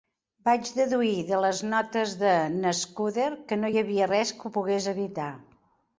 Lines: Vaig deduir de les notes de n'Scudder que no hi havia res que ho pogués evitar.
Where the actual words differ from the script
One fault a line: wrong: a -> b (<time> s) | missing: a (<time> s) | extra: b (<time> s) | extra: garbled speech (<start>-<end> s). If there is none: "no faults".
no faults